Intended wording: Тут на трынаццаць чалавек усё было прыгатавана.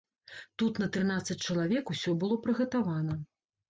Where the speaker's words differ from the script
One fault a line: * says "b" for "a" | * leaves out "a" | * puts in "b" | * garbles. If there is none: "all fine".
all fine